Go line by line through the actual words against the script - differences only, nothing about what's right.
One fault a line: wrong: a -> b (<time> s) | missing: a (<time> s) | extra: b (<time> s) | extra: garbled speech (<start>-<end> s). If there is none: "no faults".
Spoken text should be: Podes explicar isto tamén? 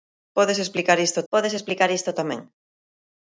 extra: podes explicar isto (1.3 s)